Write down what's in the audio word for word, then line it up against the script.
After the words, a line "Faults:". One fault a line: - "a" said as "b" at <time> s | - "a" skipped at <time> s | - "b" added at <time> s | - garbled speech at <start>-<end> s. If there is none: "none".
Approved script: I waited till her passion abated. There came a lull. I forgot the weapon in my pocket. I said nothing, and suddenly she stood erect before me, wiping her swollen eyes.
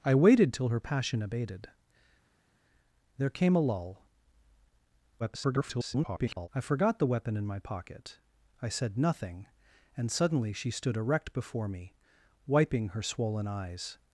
I waited till her passion abated. There came a lull. [garbled] I forgot the weapon in my pocket. I said nothing, and suddenly she stood erect before me, wiping her swollen eyes.
Faults:
- garbled speech at 5.2-6.5 s